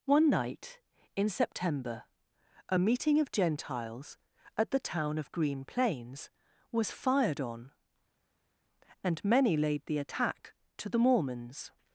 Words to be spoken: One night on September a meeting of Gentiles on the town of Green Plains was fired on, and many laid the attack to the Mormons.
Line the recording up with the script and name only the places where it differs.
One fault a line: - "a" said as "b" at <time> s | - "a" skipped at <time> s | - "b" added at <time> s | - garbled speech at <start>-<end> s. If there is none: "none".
- "on" said as "in" at 1.1 s
- "on" said as "at" at 4.6 s